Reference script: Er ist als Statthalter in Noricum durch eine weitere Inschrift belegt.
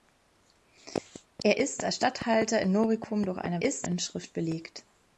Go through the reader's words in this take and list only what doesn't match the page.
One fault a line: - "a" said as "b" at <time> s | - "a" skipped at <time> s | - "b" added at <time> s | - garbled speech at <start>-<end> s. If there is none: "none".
- "weitere" said as "ist" at 3.6 s